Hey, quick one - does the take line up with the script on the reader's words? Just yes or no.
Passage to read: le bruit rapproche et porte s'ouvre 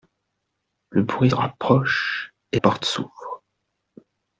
yes